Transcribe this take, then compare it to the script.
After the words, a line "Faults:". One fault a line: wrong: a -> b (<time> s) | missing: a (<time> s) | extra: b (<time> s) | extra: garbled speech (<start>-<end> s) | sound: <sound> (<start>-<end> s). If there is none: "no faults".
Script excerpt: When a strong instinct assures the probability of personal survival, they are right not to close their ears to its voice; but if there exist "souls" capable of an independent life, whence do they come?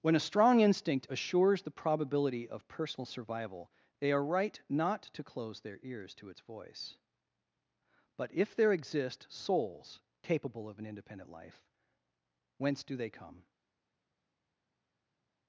When a strong instinct assures the probability of personal survival, they are right not to close their ears to its voice; but if there exist "souls" capable of an independent life, whence do they come?
Faults:
no faults